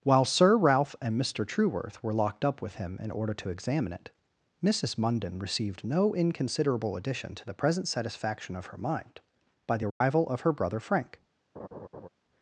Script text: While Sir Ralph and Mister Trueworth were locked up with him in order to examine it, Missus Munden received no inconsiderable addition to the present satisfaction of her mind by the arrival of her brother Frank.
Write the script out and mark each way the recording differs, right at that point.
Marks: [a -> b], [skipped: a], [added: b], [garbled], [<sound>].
While Sir Ralph and Mister Trueworth were locked up with him in order to examine it, Missus Munden received no inconsiderable addition to the present satisfaction of her mind by the arrival [dropout] of her brother Frank. [laugh]